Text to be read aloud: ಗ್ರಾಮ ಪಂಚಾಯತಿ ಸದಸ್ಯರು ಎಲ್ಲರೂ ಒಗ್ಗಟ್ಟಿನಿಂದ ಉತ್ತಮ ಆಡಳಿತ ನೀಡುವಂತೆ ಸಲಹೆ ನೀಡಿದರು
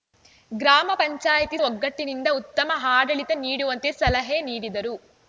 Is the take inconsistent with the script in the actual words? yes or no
yes